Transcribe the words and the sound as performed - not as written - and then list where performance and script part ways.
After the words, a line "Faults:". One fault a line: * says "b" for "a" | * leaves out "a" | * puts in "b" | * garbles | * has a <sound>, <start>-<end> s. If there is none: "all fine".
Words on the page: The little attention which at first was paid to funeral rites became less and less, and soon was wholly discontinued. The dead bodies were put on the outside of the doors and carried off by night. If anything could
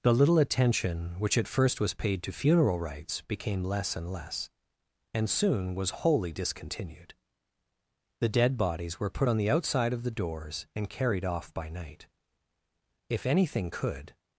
The little attention which at first was paid to funeral rites became less and less, and soon was wholly discontinued. The dead bodies were put on the outside of the doors and carried off by night. If anything could
Faults:
all fine